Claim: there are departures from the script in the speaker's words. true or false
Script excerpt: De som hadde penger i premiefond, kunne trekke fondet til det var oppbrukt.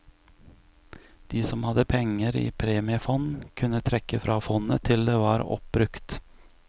true